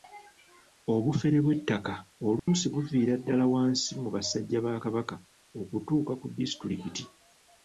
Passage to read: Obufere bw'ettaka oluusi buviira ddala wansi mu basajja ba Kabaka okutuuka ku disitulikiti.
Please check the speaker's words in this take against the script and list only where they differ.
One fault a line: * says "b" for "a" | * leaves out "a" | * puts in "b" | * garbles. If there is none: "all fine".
all fine